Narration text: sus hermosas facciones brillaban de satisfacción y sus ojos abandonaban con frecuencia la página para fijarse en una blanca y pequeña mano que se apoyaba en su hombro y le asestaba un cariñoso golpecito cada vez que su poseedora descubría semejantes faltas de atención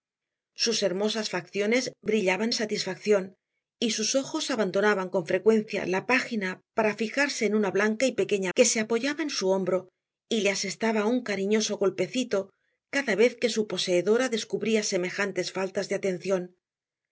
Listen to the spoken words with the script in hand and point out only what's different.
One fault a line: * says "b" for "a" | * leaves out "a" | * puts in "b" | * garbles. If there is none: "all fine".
* leaves out "de"
* leaves out "mano"